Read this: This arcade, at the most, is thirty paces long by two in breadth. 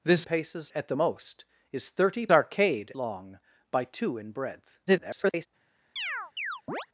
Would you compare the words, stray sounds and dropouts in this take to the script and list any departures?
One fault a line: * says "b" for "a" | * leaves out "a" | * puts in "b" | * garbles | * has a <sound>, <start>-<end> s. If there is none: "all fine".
* says "paces" for "arcade"
* says "arcade" for "paces"
* garbles
* has a chirp, 6.0-6.9 s